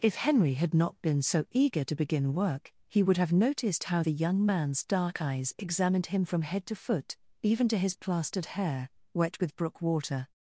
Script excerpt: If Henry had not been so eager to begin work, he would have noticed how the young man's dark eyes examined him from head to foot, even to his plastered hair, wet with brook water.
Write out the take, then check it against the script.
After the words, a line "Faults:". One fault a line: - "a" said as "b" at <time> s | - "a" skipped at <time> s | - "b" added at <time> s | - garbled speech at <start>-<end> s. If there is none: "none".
If Henry had not been so eager to begin work, he would have noticed how the young man's dark eyes examined him from head to foot, even to his plastered hair, wet with brook water.
Faults:
none